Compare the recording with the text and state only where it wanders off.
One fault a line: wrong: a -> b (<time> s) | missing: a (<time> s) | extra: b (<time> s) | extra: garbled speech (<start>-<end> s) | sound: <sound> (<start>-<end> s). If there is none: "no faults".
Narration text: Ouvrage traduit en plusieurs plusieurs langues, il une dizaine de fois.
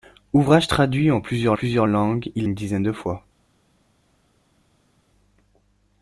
no faults